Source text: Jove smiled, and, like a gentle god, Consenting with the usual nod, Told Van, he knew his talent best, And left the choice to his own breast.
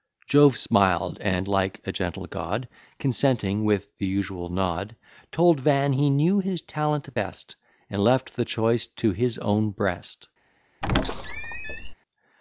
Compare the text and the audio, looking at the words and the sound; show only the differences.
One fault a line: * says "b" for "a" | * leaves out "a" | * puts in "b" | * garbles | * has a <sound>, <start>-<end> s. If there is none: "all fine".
* has a squeak, 10.8-11.9 s